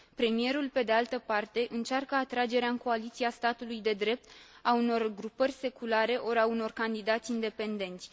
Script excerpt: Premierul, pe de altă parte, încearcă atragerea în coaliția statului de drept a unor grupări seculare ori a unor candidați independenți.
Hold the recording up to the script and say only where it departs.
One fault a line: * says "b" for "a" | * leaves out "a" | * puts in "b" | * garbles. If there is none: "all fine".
all fine